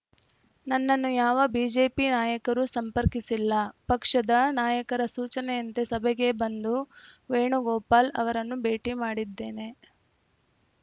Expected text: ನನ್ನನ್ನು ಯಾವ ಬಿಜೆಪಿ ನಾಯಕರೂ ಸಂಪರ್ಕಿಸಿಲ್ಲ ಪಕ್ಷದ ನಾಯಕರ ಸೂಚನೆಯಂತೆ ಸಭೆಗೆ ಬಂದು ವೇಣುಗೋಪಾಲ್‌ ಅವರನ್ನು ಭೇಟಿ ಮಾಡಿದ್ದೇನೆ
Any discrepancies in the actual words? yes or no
no